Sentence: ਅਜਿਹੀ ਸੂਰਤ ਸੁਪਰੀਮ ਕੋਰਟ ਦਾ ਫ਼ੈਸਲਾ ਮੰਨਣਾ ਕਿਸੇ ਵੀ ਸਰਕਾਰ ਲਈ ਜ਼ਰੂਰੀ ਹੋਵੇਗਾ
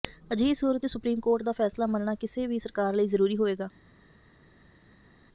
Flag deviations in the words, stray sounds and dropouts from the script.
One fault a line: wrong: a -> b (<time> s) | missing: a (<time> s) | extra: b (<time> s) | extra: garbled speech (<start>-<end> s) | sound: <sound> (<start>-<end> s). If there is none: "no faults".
no faults